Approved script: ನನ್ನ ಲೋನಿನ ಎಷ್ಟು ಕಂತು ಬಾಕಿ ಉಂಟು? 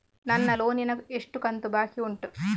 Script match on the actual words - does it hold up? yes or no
yes